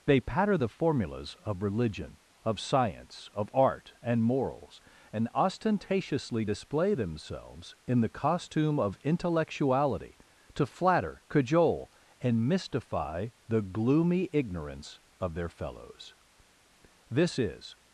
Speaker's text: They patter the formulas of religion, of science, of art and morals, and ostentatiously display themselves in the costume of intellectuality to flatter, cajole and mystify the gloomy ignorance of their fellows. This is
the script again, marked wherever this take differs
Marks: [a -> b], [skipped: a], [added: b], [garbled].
They patter the formulas of religion, of science, of art and morals, and ostentatiously display themselves in the costume of intellectuality to flatter, cajole and mystify the gloomy ignorance of their fellows. This is